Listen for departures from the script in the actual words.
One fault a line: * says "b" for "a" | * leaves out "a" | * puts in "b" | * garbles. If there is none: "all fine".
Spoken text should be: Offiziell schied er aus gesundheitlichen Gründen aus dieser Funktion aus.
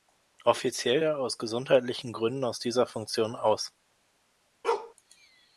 * leaves out "schied"